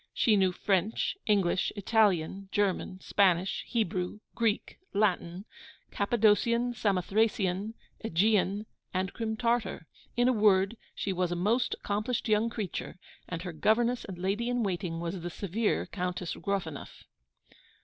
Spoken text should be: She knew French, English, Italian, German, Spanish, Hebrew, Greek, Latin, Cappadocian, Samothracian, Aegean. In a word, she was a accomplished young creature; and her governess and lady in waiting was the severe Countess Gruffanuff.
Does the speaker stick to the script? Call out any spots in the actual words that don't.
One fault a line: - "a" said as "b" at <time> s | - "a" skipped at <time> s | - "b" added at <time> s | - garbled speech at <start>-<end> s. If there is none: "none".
- "and Crim Tartar" added at 8.9 s
- "most" added at 11.3 s